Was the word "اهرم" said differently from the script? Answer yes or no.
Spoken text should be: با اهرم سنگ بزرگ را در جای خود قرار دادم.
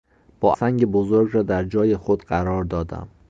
yes